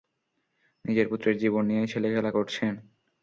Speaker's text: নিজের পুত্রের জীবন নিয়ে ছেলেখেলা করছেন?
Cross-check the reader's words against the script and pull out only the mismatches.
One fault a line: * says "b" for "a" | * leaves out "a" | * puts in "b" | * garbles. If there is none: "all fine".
all fine